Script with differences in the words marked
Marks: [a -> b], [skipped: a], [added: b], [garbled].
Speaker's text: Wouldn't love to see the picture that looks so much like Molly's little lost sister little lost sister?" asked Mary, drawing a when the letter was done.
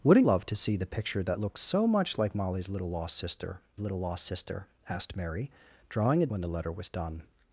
Wouldn't love to see the picture that looks so much like Molly's little lost sister little lost sister?" asked Mary, drawing a when the letter was done.